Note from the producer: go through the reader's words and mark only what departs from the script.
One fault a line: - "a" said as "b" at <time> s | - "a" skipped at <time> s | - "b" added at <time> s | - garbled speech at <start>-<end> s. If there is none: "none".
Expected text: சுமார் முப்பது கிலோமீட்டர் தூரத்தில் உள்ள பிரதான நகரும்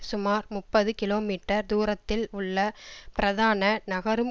none